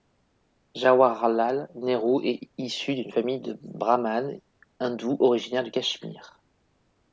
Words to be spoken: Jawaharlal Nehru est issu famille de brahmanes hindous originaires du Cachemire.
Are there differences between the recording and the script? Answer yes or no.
yes